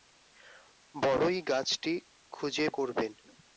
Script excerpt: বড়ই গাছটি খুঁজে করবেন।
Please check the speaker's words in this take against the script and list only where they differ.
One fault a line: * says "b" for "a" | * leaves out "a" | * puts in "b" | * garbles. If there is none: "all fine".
all fine